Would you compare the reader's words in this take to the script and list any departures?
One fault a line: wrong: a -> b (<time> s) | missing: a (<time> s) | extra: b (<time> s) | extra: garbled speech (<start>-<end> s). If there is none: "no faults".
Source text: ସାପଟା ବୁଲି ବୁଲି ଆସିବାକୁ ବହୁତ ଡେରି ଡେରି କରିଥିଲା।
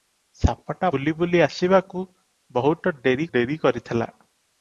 no faults